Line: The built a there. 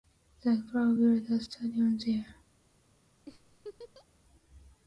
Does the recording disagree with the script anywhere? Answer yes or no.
yes